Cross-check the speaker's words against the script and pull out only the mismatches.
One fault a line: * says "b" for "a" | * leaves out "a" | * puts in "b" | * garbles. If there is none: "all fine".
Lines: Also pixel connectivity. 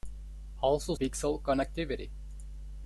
all fine